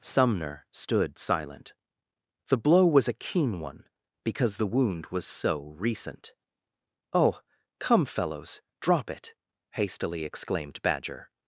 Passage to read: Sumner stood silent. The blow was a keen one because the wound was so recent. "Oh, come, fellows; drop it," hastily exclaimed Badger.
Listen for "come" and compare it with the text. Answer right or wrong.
right